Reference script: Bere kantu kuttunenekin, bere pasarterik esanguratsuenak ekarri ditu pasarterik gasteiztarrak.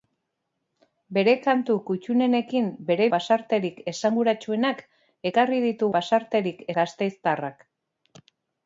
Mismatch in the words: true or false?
false